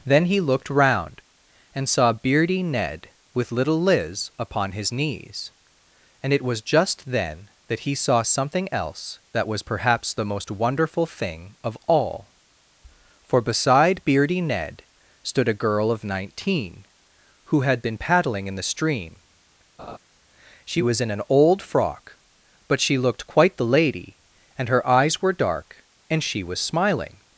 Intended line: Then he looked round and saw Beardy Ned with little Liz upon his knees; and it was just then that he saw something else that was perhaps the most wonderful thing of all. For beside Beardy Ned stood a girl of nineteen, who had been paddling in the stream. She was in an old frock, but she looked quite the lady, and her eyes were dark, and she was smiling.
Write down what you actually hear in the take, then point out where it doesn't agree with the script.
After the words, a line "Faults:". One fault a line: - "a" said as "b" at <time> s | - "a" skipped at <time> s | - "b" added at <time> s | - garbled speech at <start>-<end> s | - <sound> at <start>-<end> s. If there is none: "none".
Then he looked round and saw Beardy Ned with little Liz upon his knees; and it was just then that he saw something else that was perhaps the most wonderful thing of all. For beside Beardy Ned stood a girl of nineteen, who had been paddling in the stream. She was in an old frock, but she looked quite the lady, and her eyes were dark, and she was smiling.
Faults:
- laugh at 19.8-20.0 s